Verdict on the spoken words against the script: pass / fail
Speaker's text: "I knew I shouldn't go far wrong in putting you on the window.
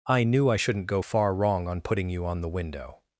fail